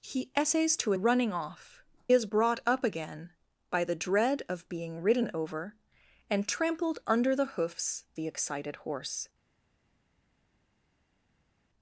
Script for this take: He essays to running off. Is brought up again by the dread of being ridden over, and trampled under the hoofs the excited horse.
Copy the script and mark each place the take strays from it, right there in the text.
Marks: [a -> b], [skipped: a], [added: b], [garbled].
He essays to running off. Is brought up again by the dread of being ridden over, and trampled under the hoofs the excited horse.